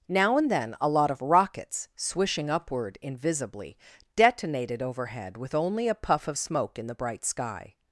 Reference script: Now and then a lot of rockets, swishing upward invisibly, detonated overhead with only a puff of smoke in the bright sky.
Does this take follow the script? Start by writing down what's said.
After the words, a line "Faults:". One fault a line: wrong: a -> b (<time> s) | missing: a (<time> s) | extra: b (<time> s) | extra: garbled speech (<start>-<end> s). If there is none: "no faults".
Now and then a lot of rockets, swishing upward invisibly, detonated overhead with only a puff of smoke in the bright sky.
Faults:
no faults